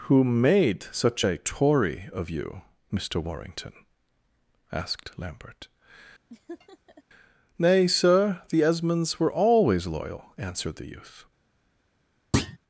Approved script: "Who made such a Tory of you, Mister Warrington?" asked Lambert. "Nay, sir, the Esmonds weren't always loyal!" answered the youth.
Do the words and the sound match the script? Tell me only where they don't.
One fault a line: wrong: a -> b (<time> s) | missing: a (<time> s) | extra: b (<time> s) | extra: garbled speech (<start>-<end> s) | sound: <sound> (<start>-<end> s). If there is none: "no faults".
sound: laugh (6.3-7.0 s)
wrong: weren't -> were (9.2 s)
sound: thud (12.3-12.6 s)